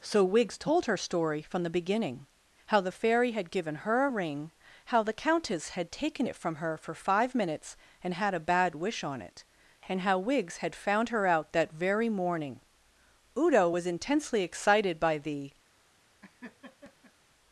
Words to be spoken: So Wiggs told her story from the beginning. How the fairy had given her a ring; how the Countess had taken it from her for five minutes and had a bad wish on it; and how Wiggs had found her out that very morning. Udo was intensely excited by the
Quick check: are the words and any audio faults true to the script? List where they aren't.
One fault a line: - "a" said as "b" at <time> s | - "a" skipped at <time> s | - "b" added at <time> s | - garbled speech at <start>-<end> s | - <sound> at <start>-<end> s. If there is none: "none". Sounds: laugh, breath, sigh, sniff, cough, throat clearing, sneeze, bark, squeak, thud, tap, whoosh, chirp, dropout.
- laugh at 16.2-17.1 s